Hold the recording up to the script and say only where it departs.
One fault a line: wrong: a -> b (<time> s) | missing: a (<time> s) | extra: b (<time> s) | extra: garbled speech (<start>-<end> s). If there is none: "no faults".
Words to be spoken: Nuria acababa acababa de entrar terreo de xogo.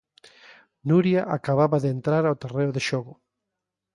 missing: acababa (1.8 s)
extra: ao (2.2 s)